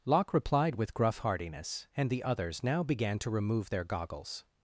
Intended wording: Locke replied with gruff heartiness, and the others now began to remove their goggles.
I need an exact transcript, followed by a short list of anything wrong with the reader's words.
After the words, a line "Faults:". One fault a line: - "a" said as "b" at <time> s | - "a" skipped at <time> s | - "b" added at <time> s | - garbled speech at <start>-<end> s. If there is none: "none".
Locke replied with gruff heartiness, and the others now began to remove their goggles.
Faults:
none